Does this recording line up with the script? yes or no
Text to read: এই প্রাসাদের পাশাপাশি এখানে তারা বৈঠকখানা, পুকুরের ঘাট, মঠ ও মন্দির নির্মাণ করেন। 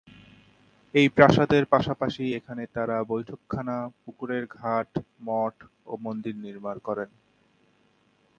yes